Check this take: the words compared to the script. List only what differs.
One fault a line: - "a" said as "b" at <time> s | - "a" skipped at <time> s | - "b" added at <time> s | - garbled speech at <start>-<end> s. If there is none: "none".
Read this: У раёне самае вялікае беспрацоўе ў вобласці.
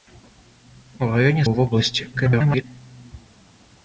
- "самае вялікае беспрацоўе" skipped at 1.4 s
- garbled speech at 2.1-2.6 s